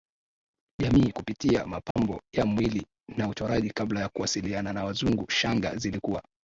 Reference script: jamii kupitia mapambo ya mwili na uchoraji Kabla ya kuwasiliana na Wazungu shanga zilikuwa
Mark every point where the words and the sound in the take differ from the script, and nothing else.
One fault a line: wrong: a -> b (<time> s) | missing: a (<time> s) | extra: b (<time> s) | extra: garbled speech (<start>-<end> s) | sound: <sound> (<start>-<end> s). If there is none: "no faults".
sound: dropout (1.9-2.0 s)